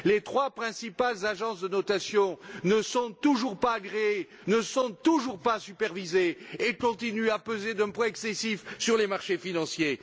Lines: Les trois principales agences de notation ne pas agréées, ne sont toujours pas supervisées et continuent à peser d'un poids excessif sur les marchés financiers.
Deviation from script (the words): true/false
true